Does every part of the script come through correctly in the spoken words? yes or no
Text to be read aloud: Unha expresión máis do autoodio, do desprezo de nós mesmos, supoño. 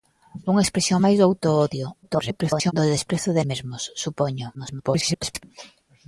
no